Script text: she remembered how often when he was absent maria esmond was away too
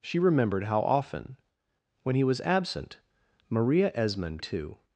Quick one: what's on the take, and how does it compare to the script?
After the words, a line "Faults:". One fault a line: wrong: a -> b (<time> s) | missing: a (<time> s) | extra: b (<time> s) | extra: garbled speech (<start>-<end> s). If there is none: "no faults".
she remembered how often when he was absent maria esmond too
Faults:
missing: was away (4.4 s)